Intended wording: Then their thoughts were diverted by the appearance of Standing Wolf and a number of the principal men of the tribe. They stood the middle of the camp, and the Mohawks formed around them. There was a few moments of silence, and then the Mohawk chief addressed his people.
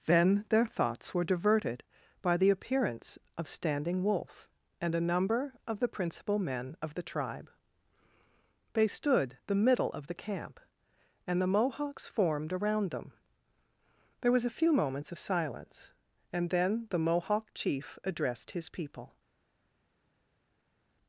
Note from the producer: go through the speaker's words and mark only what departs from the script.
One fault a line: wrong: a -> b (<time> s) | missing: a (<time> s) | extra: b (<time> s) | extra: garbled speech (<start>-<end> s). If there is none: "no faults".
no faults